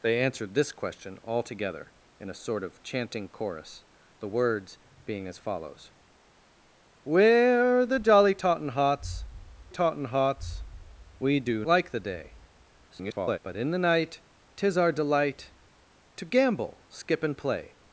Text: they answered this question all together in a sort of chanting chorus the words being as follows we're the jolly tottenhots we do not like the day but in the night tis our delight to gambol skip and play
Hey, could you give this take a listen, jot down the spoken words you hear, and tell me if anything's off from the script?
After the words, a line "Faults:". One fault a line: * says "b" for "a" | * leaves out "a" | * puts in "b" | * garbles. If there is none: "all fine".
they answered this question all together in a sort of chanting chorus the words being as follows we're the jolly tottenhots tottenhots we do like the day [garbled] but in the night tis our delight to gambol skip and play
Faults:
* puts in "tottenhots"
* leaves out "not"
* garbles